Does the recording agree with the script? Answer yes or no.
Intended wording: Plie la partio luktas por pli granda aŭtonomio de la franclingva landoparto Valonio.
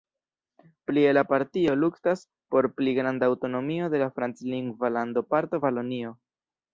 yes